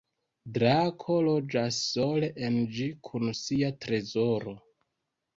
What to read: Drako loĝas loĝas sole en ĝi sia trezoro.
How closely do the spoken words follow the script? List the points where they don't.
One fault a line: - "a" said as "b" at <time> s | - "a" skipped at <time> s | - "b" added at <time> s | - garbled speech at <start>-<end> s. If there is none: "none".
- "loĝas" skipped at 1.8 s
- "kun" added at 3.1 s